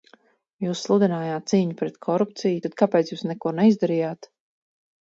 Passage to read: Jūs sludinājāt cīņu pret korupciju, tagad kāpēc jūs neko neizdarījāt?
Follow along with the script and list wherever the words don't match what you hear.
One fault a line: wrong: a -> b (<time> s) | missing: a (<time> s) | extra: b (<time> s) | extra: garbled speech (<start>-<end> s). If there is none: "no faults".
wrong: tagad -> tad (2.7 s)